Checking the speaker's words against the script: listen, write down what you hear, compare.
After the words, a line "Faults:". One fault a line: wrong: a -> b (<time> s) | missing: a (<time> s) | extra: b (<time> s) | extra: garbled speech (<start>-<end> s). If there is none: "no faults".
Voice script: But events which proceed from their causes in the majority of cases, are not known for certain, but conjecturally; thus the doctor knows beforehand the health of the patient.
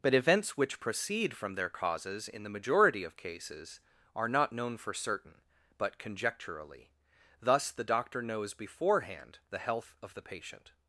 But events which proceed from their causes in the majority of cases, are not known for certain, but conjecturally; thus the doctor knows beforehand the health of the patient.
Faults:
no faults